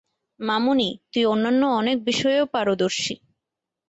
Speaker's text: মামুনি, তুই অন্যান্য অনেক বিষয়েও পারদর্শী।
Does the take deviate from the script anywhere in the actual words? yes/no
no